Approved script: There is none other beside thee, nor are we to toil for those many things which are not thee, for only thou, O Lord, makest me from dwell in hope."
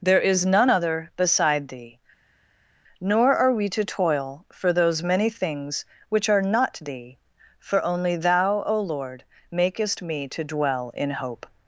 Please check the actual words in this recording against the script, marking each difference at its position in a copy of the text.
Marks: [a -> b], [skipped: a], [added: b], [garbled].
There is none other beside thee, nor are we to toil for those many things which are not thee, for only thou, O Lord, makest me [from -> to] dwell in hope."